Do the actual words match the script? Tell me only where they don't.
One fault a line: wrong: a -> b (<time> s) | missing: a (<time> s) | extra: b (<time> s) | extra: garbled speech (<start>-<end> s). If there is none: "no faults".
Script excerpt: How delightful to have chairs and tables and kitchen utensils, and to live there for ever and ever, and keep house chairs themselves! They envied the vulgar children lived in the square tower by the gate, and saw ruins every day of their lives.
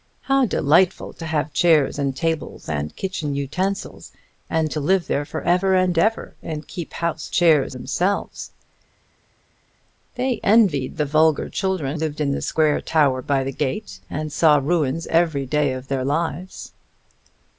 no faults